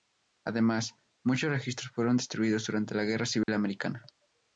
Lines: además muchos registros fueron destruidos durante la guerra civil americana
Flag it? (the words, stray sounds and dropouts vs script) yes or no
yes